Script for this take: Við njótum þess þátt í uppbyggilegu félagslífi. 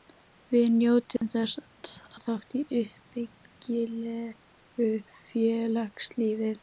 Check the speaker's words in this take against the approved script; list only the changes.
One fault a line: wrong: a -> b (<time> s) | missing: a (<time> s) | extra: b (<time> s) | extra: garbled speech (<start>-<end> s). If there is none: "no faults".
no faults